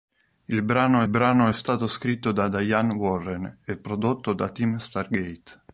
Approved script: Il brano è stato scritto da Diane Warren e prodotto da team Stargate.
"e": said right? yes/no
yes